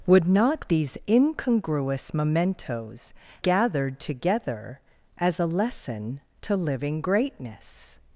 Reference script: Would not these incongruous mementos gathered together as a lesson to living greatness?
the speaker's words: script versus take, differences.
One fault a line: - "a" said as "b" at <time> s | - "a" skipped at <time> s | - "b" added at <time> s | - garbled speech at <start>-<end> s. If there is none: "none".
none